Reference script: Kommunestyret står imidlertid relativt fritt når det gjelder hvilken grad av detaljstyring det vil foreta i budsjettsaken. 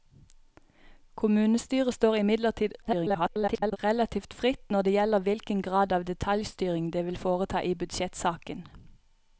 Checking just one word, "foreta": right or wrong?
right